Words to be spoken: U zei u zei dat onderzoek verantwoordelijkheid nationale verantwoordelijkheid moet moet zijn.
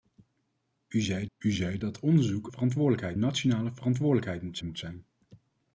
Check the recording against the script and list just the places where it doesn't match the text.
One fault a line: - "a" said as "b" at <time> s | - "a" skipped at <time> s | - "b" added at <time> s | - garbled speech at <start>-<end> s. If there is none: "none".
none